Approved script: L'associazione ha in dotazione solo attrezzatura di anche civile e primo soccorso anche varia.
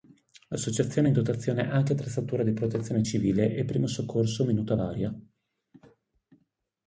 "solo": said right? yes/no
no